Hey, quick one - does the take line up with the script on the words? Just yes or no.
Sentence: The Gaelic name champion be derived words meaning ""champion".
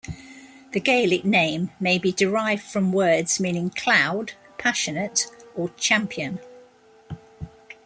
no